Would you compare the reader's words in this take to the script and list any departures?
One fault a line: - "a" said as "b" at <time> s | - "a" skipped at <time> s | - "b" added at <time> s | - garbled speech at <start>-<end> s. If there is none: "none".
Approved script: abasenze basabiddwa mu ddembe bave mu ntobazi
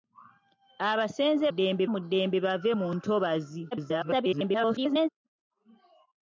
- "basabiddwa" said as "ddembe" at 1.5 s
- garbled speech at 3.7-5.1 s